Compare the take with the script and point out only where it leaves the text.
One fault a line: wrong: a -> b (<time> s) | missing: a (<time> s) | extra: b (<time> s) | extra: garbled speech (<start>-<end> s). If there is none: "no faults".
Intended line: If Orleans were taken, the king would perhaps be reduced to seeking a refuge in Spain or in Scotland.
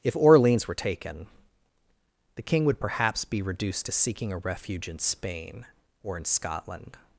no faults